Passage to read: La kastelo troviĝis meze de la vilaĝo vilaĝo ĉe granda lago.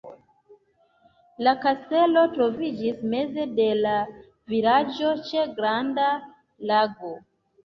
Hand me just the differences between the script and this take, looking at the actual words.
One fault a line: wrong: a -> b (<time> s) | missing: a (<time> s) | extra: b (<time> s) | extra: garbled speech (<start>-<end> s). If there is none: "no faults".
missing: vilaĝo (5.1 s)